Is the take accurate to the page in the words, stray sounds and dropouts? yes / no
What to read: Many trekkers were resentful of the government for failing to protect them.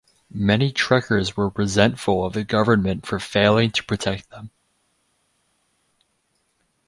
yes